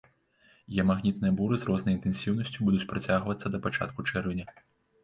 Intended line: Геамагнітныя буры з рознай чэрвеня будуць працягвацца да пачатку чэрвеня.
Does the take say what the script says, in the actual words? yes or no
no